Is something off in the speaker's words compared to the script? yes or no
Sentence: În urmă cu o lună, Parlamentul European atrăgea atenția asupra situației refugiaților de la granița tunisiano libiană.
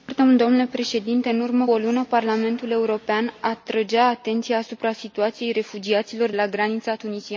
yes